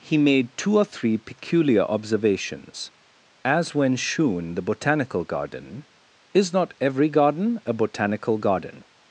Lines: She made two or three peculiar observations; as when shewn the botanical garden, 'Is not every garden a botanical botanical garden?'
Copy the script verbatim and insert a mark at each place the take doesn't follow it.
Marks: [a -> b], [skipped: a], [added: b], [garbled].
[She -> He] made two or three peculiar observations; as when shewn the botanical garden, 'Is not every garden a botanical [skipped: botanical] garden?'